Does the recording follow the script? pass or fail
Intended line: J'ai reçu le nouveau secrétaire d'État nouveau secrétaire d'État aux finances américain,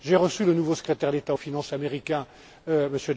fail